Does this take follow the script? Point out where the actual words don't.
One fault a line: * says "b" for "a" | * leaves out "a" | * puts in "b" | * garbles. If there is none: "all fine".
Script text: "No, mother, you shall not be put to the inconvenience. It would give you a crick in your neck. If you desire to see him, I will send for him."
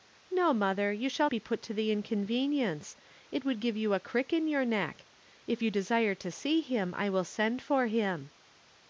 * leaves out "not"